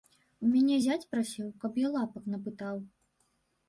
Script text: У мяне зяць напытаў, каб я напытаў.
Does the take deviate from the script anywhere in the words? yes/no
yes